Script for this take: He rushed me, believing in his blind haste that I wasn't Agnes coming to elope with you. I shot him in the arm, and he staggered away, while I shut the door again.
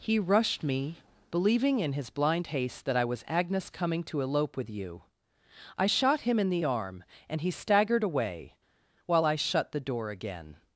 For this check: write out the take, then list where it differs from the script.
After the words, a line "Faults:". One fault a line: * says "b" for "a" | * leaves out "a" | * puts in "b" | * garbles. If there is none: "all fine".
He rushed me, believing in his blind haste that I was Agnes coming to elope with you. I shot him in the arm, and he staggered away, while I shut the door again.
Faults:
* says "was" for "wasn't"